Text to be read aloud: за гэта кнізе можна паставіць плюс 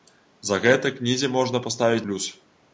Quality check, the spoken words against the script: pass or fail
pass